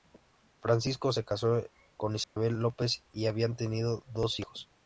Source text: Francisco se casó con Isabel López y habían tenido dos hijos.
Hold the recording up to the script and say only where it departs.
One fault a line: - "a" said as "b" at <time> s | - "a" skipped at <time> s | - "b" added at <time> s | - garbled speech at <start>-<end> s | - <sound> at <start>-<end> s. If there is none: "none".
- dropout at 2.2-2.4 s